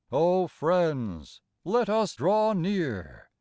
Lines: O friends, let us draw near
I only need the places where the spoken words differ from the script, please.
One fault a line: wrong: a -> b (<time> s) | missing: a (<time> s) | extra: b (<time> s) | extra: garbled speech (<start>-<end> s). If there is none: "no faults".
no faults